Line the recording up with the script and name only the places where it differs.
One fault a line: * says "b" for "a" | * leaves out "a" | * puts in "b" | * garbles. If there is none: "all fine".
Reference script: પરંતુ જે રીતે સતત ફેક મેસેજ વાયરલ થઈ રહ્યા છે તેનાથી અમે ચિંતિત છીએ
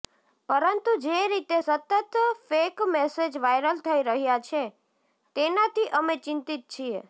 all fine